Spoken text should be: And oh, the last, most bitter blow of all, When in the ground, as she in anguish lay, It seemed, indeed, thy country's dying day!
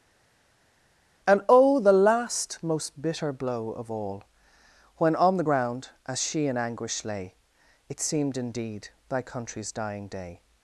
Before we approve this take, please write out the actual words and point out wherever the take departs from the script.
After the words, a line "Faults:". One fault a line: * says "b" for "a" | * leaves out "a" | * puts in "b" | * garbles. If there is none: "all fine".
And oh, the last, most bitter blow of all, When on the ground, as she in anguish lay, It seemed, indeed, thy country's dying day!
Faults:
* says "on" for "in"